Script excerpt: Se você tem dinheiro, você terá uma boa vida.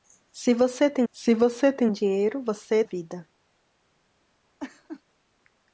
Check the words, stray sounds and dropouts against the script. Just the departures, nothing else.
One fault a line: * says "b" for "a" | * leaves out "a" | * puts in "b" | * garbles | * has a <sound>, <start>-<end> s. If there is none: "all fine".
* says "se" for "dinheiro"
* says "tem dinheiro você" for "terá uma boa"
* has a laugh, 4.6-5.0 s